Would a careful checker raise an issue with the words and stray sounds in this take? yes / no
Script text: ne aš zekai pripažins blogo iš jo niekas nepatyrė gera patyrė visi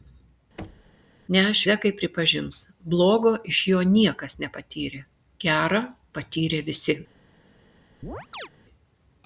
yes